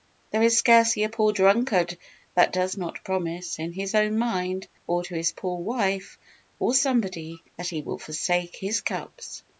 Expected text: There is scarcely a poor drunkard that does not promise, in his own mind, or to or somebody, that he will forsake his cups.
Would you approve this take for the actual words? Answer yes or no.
no